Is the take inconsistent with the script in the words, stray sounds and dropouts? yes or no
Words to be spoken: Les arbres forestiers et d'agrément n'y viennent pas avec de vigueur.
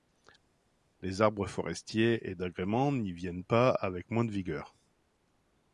yes